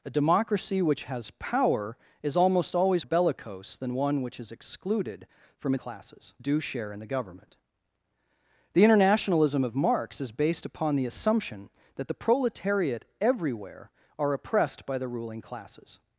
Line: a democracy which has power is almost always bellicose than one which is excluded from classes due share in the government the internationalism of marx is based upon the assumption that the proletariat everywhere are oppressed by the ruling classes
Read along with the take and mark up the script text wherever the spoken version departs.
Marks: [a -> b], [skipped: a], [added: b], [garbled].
a democracy which has power is almost always bellicose than one which is excluded from classes due share in the government the internationalism of marx is based upon the assumption that the proletariat everywhere are oppressed by the ruling classes